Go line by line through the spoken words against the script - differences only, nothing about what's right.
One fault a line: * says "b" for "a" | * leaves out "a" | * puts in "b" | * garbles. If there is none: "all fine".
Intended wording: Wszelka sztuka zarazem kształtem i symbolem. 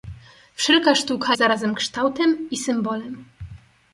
all fine